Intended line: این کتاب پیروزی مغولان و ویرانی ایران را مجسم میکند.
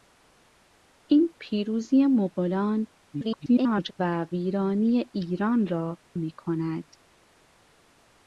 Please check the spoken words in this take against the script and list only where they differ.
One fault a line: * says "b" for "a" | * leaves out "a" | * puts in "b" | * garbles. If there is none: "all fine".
* leaves out "کتاب"
* garbles
* leaves out "مجسم"